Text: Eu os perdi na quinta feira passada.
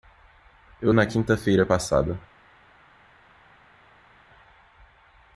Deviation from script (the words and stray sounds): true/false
true